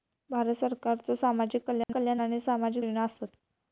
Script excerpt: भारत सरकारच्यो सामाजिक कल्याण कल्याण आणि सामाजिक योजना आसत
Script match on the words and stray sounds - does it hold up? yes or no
no